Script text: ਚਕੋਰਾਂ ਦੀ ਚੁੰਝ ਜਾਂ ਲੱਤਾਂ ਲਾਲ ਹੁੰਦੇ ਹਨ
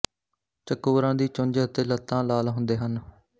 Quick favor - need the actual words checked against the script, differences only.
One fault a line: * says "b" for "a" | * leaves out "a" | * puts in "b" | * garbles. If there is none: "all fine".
* says "ਅਤੇ" for "ਜਾਂ"